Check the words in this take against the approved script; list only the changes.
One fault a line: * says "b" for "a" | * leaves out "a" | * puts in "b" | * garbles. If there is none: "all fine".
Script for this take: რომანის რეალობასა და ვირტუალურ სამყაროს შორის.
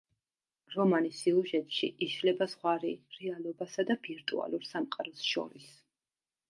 * puts in "სიუჟეტში იშლება ზღვარი"